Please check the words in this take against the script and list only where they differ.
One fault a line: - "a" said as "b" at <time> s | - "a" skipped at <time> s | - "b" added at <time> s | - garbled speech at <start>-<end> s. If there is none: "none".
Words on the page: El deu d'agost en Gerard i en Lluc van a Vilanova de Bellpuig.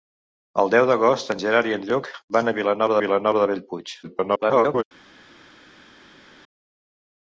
- "Vilanova" added at 3.1 s
- garbled speech at 4.0-4.8 s